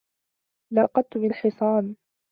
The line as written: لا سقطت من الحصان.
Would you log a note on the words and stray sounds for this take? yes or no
no